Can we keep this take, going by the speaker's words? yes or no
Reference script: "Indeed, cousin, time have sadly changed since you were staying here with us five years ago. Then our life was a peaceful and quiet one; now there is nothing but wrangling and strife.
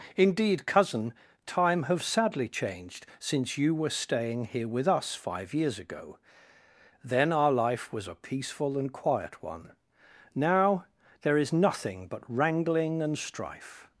yes